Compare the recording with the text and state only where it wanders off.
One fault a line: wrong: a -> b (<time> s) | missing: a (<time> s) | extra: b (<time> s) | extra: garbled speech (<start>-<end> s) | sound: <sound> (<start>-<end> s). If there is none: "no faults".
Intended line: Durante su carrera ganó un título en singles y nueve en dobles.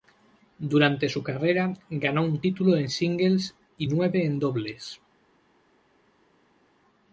no faults